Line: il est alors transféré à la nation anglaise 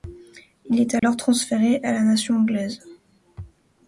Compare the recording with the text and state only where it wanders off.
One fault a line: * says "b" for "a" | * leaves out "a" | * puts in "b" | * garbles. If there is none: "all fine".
all fine